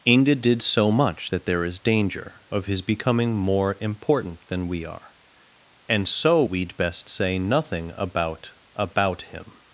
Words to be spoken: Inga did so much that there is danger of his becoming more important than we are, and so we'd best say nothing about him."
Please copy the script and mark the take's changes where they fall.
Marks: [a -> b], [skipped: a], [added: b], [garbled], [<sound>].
Inga did so much that there is danger of his becoming more important than we are, and so we'd best say nothing about [added: about] him."